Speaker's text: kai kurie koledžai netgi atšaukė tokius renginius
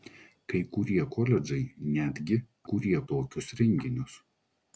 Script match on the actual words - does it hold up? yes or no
no